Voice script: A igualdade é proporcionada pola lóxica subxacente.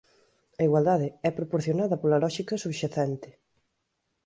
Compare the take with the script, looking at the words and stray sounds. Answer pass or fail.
pass